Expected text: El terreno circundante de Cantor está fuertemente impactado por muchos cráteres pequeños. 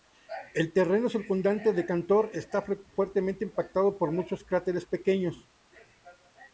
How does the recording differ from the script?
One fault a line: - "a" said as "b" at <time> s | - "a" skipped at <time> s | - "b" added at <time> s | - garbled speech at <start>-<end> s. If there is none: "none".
none